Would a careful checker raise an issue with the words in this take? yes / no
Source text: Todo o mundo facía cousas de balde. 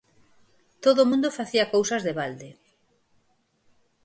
no